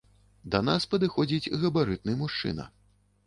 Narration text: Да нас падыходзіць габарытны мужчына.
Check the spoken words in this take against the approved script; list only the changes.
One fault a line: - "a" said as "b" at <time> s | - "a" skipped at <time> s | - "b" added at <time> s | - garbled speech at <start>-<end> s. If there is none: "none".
none